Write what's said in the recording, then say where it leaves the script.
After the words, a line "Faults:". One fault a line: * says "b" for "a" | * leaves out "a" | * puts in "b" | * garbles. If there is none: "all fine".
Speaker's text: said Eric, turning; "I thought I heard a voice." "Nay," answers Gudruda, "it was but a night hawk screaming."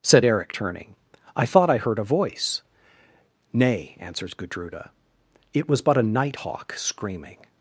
said Eric, turning; "I thought I heard a voice." "Nay," answers Gudruda, "it was but a night hawk screaming."
Faults:
all fine